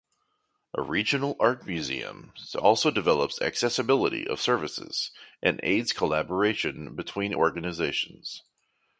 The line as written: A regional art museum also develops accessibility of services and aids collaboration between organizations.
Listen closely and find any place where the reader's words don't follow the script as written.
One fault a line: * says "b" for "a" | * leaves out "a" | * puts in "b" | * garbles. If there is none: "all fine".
all fine